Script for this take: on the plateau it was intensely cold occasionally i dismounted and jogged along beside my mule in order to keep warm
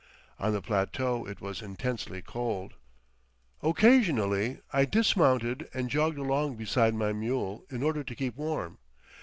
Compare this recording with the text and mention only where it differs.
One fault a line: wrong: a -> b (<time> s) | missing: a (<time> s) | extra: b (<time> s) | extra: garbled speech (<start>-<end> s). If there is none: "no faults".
no faults